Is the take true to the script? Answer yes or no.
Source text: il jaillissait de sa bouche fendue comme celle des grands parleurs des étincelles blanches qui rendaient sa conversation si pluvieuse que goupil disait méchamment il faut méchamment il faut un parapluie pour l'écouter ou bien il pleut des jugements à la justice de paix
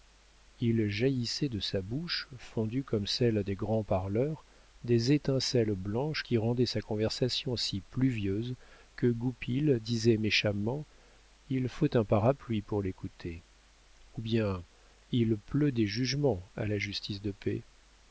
no